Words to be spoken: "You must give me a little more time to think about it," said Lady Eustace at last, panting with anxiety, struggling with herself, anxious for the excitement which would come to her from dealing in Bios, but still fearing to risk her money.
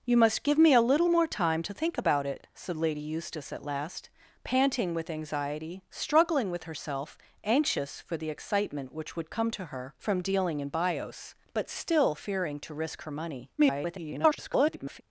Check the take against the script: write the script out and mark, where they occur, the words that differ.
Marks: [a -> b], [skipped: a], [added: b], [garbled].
"You must give me a little more time to think about it," said Lady Eustace at last, panting with anxiety, struggling with herself, anxious for the excitement which would come to her from dealing in Bios, but still fearing to risk her money. [garbled]